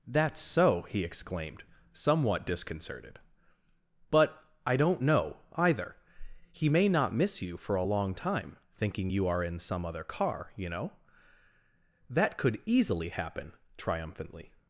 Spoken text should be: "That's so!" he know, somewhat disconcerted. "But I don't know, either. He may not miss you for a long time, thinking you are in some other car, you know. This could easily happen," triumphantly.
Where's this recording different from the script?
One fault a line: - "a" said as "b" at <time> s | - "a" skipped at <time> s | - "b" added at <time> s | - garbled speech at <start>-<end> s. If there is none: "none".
- "know" said as "exclaimed" at 1.0 s
- "This" said as "That" at 12.1 s